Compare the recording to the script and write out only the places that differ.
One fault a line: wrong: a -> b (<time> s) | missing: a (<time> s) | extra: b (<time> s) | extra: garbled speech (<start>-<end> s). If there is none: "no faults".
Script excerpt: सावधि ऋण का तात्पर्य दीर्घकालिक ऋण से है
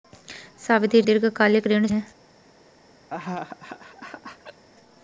missing: ऋण का तात्पर्य (1.0 s)
missing: से (1.9 s)